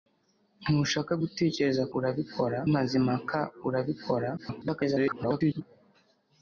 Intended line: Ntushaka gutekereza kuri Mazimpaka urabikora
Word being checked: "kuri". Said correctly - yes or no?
no